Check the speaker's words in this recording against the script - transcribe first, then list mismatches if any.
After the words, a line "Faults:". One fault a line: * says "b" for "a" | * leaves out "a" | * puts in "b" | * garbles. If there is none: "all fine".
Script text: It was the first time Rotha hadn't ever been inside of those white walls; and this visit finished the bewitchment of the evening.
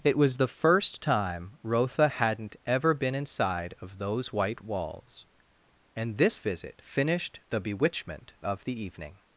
It was the first time Rotha hadn't ever been inside of those white walls; and this visit finished the bewitchment of the evening.
Faults:
all fine